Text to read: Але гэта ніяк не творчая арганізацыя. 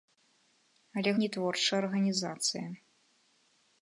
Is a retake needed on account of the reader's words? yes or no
yes